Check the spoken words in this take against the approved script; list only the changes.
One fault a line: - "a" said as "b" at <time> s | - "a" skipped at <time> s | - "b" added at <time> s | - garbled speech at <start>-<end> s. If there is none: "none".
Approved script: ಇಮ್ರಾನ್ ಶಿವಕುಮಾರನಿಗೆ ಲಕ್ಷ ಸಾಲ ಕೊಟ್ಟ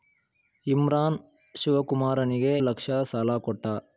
none